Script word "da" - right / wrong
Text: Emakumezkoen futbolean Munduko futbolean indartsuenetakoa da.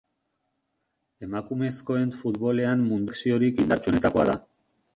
right